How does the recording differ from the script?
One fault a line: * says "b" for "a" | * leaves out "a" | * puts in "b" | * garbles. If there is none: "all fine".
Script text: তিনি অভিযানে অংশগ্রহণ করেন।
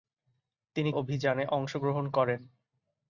all fine